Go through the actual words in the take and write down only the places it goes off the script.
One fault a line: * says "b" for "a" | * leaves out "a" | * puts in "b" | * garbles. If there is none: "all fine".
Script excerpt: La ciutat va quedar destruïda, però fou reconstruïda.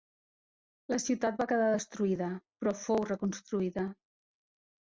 all fine